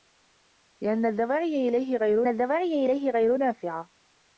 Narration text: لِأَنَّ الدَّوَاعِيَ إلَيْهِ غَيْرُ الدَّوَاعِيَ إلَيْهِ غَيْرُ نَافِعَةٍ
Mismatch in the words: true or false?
false